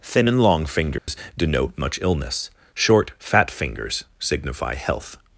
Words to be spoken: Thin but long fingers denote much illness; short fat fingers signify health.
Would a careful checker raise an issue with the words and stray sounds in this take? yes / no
yes